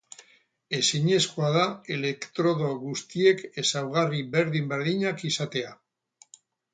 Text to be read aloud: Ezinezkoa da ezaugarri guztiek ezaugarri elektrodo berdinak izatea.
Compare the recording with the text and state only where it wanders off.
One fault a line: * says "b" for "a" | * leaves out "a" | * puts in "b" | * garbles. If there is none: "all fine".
* says "elektrodo" for "ezaugarri"
* says "berdin" for "elektrodo"